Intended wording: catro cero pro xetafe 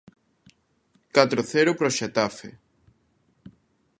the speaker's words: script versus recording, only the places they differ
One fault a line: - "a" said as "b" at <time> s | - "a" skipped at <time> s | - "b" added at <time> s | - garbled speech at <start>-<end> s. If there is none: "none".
none